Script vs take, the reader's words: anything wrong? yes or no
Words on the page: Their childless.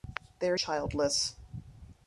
no